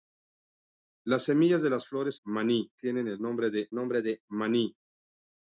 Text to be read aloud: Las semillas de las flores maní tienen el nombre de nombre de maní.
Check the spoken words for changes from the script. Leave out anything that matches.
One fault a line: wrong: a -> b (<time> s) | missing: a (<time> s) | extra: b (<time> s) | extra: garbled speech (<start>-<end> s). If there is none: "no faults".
no faults